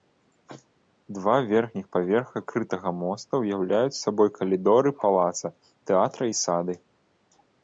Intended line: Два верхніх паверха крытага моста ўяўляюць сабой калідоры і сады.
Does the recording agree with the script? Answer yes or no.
no